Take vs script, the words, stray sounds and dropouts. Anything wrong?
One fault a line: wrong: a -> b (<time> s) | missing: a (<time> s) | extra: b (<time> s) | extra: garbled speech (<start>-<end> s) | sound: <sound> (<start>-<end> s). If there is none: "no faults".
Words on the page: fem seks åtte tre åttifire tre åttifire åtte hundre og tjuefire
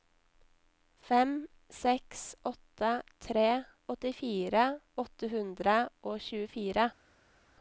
missing: tre åttifire (4.6 s)